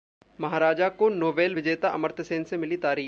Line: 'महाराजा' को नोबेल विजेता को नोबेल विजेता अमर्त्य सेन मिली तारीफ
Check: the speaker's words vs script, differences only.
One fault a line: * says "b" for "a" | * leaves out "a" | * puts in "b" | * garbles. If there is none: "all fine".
* leaves out "को नोबेल विजेता"
* puts in "से"